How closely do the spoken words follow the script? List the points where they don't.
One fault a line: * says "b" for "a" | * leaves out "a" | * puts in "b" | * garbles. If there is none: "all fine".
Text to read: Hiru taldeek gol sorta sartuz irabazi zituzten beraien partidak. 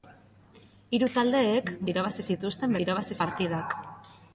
* leaves out "gol sorta sartuz"
* says "irabazi" for "beraien"